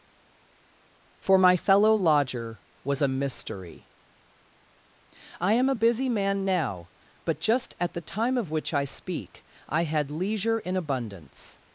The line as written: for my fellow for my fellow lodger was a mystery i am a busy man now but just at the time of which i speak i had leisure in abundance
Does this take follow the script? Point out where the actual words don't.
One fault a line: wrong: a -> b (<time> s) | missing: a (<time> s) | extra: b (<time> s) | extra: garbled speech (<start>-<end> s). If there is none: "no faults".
missing: for my fellow (2.0 s)